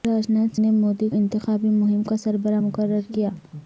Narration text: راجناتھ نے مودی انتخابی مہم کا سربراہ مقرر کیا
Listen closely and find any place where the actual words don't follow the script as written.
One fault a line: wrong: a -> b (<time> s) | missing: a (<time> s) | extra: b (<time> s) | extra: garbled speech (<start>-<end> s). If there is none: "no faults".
no faults